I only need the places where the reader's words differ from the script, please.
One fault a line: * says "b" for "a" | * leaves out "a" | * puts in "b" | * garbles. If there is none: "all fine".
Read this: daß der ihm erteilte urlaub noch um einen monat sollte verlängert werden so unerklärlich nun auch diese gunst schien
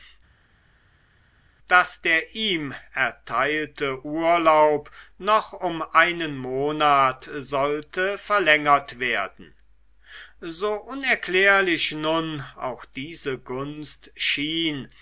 all fine